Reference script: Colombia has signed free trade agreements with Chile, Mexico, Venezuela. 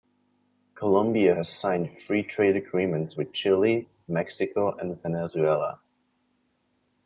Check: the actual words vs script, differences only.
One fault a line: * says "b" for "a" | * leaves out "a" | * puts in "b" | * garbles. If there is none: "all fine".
* puts in "and"